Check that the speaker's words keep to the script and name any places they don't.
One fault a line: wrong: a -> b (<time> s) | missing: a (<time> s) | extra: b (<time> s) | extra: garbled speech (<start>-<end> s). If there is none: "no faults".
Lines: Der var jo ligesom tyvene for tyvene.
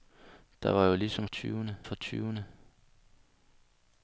no faults